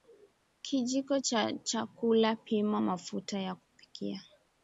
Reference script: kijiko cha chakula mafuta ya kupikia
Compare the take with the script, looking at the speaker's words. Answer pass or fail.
fail